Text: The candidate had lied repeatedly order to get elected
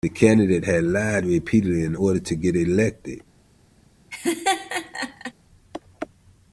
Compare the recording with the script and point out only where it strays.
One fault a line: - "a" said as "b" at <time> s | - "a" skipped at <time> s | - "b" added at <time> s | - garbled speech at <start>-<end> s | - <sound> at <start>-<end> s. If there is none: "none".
- "in" added at 1.8 s
- laugh at 4.1-5.3 s